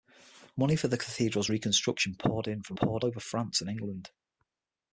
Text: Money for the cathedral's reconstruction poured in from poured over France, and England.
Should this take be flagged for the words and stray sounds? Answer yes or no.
no